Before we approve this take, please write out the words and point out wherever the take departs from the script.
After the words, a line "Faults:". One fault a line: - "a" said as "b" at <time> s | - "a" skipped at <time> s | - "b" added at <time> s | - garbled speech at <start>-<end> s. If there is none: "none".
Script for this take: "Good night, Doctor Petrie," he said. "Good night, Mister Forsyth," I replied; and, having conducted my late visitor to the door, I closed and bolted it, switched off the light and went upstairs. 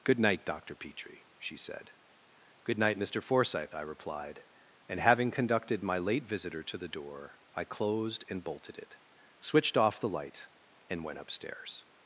"Good night, Doctor Petrie," she said. "Good night, Mister Forsyth," I replied; and, having conducted my late visitor to the door, I closed and bolted it, switched off the light and went upstairs.
Faults:
- "he" said as "she" at 1.4 s